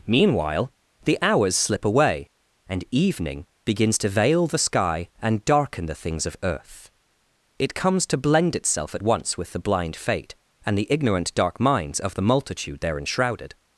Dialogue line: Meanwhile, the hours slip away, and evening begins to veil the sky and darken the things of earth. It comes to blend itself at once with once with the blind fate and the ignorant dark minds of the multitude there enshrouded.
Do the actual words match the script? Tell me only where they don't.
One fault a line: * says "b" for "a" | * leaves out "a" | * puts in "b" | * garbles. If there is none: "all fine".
* leaves out "once with"